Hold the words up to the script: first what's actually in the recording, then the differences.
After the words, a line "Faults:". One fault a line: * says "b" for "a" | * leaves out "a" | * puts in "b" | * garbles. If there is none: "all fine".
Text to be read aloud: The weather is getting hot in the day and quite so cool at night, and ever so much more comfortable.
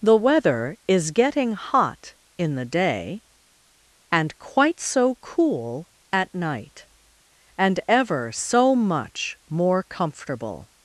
The weather is getting hot in the day and quite so cool at night, and ever so much more comfortable.
Faults:
all fine